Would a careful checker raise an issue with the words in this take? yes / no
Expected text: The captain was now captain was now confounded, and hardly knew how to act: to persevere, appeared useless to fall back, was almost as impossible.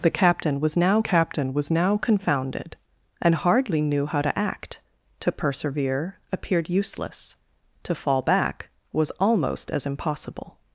no